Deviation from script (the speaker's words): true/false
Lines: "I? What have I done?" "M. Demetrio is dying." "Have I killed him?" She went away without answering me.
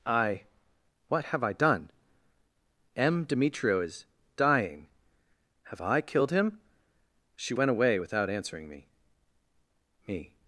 true